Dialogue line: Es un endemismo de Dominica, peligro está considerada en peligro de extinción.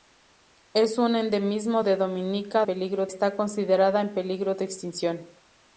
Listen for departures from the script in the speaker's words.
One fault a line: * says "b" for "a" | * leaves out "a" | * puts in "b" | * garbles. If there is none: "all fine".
all fine